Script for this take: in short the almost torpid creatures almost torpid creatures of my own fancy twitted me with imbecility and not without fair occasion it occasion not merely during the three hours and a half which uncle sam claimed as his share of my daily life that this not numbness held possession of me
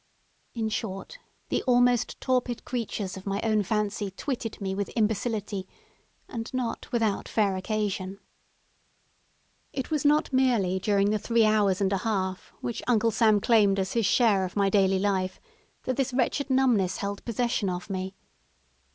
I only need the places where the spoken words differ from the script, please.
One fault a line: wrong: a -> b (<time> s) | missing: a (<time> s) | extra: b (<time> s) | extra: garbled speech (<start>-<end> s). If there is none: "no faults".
missing: almost torpid creatures (3.2 s)
wrong: occasion -> was (9.9 s)
wrong: not -> wretched (16.1 s)